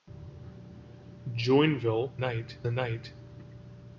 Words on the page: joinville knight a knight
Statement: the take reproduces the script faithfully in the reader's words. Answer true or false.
true